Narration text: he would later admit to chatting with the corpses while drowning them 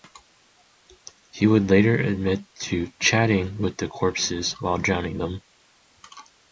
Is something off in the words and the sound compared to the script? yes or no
no